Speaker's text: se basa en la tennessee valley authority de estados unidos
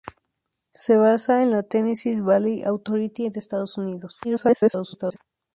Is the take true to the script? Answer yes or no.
no